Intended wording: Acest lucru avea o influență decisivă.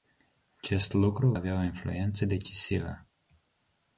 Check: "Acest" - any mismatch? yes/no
no